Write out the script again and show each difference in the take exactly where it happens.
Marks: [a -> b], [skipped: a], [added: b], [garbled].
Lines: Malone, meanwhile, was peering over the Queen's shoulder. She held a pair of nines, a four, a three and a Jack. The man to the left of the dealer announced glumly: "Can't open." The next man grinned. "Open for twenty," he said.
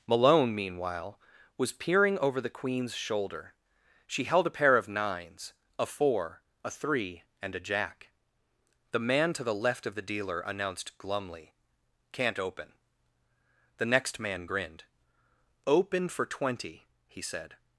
Malone, meanwhile, was peering over the Queen's shoulder. She held a pair of nines, a four, a three and a Jack. The man to the left of the dealer announced glumly: "Can't open." The next man grinned. "Open for twenty," he said.